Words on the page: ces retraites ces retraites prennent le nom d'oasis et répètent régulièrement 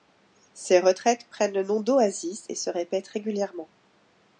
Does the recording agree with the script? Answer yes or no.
no